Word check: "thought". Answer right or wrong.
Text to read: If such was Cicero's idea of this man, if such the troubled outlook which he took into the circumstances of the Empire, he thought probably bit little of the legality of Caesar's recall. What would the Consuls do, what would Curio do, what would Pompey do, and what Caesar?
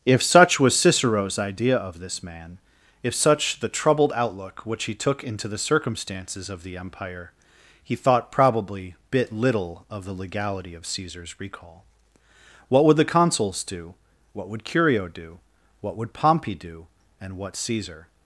right